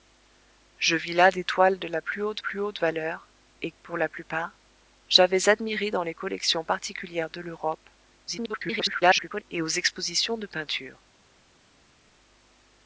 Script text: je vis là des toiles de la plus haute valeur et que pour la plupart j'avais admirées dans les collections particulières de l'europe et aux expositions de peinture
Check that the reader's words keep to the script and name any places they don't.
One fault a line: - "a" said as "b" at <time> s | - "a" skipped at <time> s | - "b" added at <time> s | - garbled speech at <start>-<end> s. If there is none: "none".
- "plus haute" added at 2.4 s
- "que" skipped at 3.7 s
- garbled speech at 8.3-9.4 s